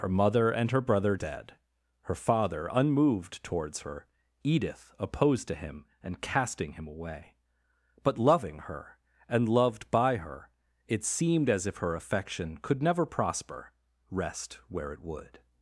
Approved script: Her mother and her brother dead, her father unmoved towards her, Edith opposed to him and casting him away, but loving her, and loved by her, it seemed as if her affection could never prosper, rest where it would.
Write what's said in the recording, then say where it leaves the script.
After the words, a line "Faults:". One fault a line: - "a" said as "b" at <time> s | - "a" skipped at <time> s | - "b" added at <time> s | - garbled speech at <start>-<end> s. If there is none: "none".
Her mother and her brother dead, her father unmoved towards her, Edith opposed to him and casting him away, but loving her, and loved by her, it seemed as if her affection could never prosper, rest where it would.
Faults:
none